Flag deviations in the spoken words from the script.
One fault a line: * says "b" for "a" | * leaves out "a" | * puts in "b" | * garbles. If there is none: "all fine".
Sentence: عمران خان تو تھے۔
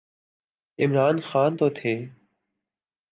all fine